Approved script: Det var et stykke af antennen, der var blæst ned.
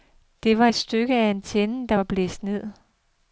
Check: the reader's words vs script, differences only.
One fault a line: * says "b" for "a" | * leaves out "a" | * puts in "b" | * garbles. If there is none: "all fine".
all fine